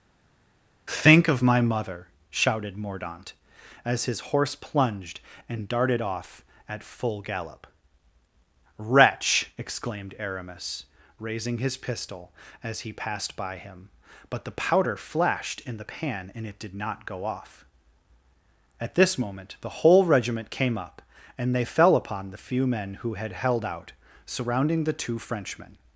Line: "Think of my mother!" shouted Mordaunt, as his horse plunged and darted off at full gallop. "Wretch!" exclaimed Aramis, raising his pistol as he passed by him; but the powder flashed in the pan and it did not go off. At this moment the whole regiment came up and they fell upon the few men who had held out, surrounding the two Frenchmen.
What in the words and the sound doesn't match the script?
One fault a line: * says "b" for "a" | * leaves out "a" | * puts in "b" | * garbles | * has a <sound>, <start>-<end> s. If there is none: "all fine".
all fine